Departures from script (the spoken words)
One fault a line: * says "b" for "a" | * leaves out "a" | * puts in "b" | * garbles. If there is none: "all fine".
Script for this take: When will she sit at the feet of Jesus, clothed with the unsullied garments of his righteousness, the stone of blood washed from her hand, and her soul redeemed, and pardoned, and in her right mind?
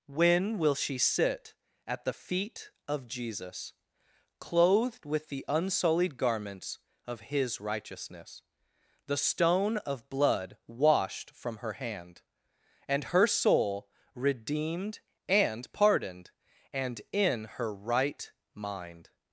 all fine